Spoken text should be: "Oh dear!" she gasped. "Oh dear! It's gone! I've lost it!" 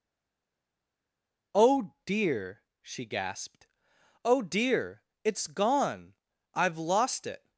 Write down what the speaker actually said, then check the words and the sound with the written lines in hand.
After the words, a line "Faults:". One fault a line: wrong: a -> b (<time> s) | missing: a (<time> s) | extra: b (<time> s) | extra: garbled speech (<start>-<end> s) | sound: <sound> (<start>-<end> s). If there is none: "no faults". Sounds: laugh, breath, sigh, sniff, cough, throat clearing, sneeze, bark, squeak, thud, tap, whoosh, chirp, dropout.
"Oh dear!" she gasped. "Oh dear! It's gone! I've lost it!"
Faults:
no faults